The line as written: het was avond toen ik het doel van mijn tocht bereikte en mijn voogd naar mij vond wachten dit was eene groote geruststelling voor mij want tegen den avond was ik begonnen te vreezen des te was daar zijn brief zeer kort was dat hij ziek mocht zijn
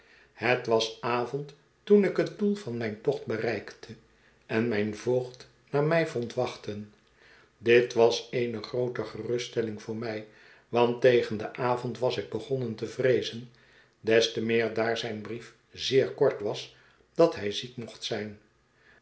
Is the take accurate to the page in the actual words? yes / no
no